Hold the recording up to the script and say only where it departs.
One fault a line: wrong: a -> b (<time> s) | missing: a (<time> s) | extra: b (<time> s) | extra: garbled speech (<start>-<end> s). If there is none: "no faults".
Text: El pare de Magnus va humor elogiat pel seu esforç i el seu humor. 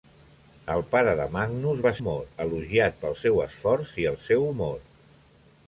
no faults